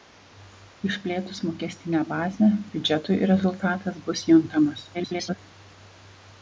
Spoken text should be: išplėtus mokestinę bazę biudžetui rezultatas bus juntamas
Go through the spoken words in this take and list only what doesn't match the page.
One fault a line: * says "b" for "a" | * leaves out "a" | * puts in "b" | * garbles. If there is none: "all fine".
* garbles